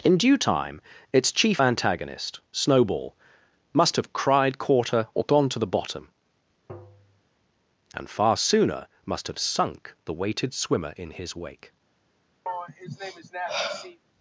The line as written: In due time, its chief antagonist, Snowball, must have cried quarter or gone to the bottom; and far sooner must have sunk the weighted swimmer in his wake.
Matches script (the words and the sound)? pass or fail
fail